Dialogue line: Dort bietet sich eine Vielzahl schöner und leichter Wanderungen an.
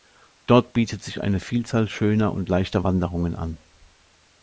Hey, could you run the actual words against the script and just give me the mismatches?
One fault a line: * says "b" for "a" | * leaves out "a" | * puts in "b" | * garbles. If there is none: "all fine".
all fine